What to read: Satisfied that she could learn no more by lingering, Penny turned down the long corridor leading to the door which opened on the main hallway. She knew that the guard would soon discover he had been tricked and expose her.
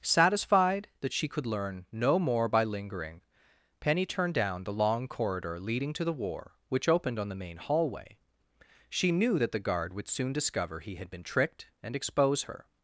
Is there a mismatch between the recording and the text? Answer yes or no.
yes